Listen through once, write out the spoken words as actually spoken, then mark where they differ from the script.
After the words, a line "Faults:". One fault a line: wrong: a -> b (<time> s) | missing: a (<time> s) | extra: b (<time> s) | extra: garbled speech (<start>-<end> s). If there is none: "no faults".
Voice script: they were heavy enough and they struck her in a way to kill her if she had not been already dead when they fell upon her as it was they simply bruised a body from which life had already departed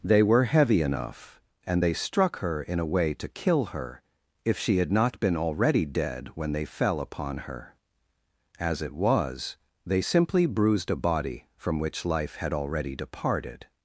they were heavy enough and they struck her in a way to kill her if she had not been already dead when they fell upon her as it was they simply bruised a body from which life had already departed
Faults:
no faults